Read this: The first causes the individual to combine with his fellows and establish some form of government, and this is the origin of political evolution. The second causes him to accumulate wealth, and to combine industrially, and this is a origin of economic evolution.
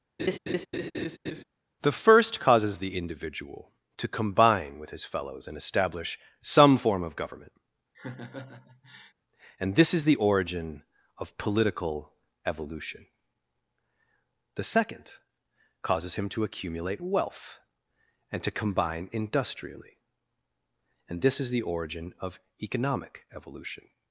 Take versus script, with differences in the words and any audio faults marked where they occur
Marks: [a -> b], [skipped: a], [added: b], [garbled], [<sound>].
[laugh] The first causes the individual to combine with his fellows and establish some form of government, [laugh] and this is the origin of political evolution. The second causes him to accumulate wealth, and to combine industrially, and this is [a -> the] origin of economic evolution.